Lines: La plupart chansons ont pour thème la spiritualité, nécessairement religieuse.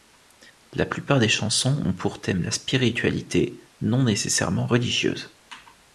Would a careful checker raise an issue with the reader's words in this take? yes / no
yes